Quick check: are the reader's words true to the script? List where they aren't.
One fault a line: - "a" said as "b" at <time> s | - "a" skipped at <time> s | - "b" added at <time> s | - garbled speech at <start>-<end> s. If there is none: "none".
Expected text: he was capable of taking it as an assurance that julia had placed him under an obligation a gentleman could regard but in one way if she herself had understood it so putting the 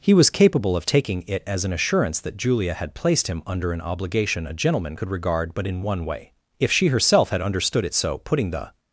none